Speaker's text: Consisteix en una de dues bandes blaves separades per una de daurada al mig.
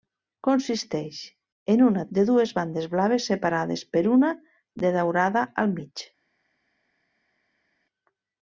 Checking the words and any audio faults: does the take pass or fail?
pass